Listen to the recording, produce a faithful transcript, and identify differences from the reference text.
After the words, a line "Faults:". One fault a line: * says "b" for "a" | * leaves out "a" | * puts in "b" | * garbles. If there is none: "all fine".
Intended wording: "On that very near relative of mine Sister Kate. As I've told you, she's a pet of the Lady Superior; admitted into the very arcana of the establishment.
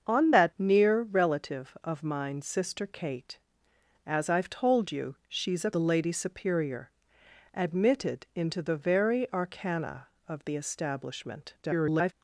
"On that near relative of mine Sister Kate. As I've told you, she's a the Lady Superior; admitted into the very arcana of the establishment. [garbled]
Faults:
* leaves out "very"
* leaves out "pet of"
* garbles